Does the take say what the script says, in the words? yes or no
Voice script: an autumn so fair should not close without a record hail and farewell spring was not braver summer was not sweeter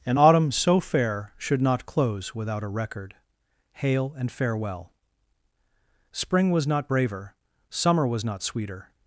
yes